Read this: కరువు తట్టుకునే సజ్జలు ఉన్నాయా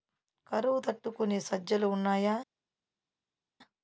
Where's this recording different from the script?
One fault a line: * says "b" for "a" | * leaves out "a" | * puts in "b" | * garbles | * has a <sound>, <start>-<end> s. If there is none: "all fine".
all fine